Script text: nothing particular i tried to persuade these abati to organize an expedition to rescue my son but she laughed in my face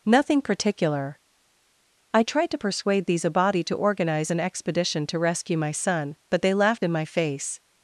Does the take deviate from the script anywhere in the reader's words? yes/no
yes